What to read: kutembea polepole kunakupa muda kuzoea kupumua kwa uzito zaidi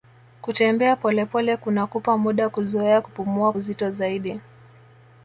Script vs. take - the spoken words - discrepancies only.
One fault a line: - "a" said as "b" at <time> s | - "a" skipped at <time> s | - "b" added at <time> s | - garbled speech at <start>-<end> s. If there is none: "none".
- "kwa" skipped at 3.5 s